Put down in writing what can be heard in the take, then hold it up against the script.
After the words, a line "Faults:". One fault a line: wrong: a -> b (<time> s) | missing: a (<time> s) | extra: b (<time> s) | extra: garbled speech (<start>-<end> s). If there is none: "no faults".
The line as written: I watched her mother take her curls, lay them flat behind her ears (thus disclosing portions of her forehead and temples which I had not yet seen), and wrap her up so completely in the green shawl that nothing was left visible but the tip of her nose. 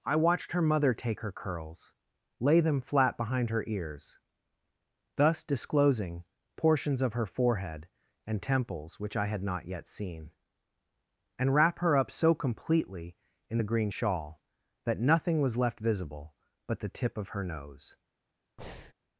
I watched her mother take her curls, lay them flat behind her ears (thus disclosing portions of her forehead and temples which I had not yet seen), and wrap her up so completely in the green shawl that nothing was left visible but the tip of her nose.
Faults:
no faults